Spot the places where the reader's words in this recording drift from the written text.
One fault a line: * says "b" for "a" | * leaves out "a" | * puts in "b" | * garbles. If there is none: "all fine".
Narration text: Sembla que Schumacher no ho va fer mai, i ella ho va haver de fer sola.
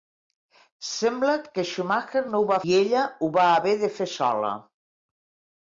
* leaves out "fer mai"